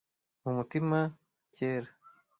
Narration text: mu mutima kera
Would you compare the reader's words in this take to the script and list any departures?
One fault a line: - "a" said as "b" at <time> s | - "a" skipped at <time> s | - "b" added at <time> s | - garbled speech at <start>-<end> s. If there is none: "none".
none